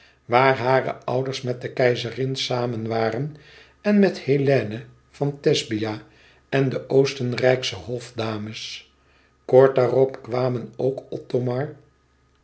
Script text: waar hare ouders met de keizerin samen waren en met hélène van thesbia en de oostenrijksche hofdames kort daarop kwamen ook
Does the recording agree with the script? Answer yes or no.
yes